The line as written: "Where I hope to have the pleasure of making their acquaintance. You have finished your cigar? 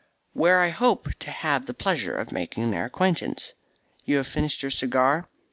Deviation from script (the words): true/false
false